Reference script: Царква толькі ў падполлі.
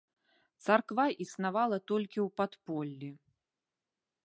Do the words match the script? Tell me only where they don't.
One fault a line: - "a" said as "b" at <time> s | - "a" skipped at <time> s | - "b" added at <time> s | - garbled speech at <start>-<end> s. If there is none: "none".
- "існавала" added at 1.2 s